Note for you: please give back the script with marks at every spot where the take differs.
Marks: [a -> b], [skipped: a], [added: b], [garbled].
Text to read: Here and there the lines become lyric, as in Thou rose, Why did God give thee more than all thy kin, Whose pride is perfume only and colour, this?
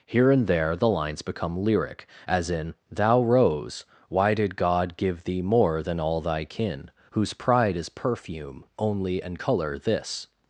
Here and there the lines become lyric, as in Thou rose, Why did God give thee more than all thy kin, Whose pride is perfume only and colour, this?